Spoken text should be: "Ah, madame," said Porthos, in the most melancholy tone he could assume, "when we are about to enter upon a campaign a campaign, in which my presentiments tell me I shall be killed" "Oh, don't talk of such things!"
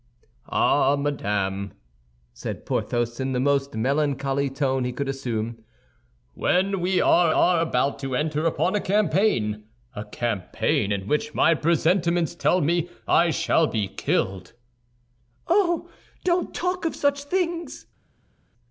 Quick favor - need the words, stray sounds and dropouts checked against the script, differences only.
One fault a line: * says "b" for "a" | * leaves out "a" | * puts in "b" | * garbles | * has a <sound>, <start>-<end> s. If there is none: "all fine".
* puts in "are"